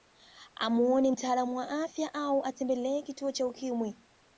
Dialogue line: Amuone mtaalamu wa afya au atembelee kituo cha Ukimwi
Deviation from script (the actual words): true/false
false